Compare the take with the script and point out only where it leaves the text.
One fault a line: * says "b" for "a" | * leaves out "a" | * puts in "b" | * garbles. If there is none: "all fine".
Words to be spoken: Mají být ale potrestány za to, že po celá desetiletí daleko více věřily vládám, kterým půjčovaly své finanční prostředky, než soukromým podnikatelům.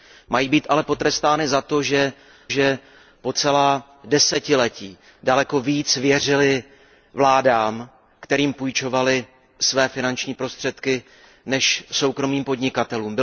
* puts in "že"